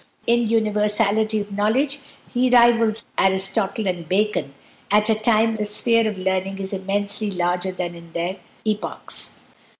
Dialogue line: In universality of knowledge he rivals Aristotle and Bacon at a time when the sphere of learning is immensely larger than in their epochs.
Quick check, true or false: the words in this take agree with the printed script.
false